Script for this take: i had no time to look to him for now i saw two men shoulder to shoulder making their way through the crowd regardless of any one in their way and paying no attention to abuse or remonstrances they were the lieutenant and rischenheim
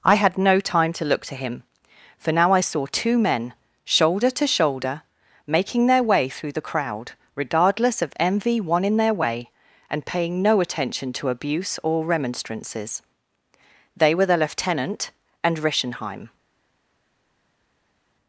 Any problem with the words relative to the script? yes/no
yes